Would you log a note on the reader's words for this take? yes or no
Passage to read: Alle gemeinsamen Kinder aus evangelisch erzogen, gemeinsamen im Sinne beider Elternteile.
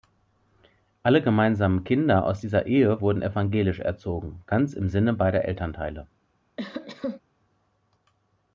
yes